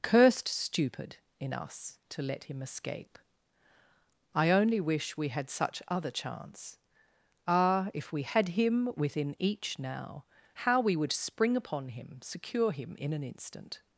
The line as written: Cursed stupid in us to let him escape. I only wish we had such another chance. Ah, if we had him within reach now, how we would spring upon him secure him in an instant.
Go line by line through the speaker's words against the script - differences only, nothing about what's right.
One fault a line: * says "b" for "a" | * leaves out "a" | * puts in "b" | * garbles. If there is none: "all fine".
* says "other" for "another"
* says "each" for "reach"